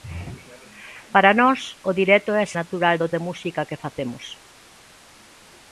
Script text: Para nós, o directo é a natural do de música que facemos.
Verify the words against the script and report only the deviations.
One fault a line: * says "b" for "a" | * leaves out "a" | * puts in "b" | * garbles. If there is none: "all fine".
all fine